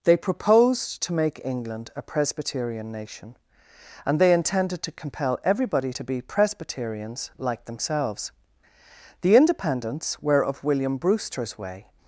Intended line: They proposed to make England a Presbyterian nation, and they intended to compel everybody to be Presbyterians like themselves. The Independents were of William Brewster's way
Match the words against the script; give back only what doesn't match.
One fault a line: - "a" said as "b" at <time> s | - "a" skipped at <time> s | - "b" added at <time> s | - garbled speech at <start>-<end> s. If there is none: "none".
none